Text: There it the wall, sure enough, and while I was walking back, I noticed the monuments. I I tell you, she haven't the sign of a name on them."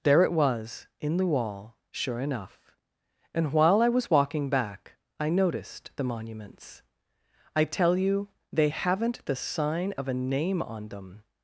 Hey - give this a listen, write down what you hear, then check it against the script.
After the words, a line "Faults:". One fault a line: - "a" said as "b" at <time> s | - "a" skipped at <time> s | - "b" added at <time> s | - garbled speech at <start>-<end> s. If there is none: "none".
There it was in the wall, sure enough, and while I was walking back, I noticed the monuments. I tell you, they haven't the sign of a name on them."
Faults:
- "was in" added at 0.3 s
- "I" skipped at 7.6 s
- "she" said as "they" at 8.5 s